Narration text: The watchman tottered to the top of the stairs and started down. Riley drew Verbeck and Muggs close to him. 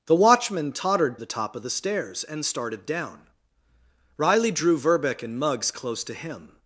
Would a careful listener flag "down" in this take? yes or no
no